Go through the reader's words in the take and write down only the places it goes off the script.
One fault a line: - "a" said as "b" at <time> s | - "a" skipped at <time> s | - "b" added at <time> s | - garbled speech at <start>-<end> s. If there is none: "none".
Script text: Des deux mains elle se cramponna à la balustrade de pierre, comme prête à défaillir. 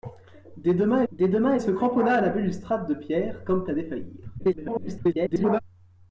- "des deux mains" added at 1.1 s
- "prête" skipped at 3.6 s
- garbled speech at 4.4-5.6 s